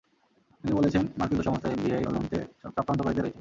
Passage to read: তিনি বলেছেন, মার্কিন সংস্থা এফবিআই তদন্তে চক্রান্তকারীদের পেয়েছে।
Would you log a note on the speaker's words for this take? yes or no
no